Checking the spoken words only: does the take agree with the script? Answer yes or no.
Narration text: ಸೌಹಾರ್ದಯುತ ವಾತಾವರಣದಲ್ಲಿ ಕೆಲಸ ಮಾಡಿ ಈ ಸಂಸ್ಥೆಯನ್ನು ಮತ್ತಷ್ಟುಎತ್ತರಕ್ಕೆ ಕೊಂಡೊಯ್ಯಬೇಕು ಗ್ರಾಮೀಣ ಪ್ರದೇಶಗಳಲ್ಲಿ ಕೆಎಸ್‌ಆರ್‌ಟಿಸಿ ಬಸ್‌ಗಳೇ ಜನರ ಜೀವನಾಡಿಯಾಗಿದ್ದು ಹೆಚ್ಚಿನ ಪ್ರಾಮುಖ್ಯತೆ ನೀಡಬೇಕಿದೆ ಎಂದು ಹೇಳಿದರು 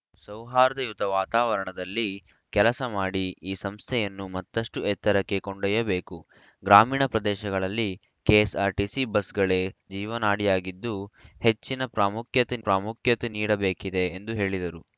no